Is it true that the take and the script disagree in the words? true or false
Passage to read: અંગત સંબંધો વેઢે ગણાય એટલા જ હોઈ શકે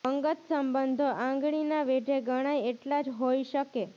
true